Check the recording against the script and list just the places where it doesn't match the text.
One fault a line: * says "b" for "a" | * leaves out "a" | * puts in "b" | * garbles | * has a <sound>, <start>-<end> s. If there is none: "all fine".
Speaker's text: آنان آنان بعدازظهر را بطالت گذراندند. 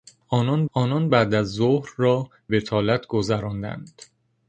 all fine